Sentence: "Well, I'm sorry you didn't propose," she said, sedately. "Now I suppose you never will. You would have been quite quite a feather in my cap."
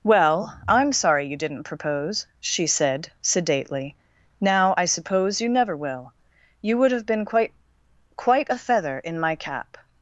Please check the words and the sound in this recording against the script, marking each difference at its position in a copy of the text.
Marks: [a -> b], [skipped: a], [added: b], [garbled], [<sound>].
"Well, I'm sorry you didn't propose," she said, sedately. "Now I suppose you never will. You would have been quite quite a feather in my cap."